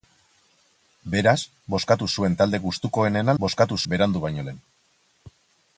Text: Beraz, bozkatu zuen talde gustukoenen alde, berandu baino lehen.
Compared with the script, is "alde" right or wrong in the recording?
wrong